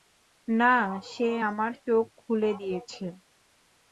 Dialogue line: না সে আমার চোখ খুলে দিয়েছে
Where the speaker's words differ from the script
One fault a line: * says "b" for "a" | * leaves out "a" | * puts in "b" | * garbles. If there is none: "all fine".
all fine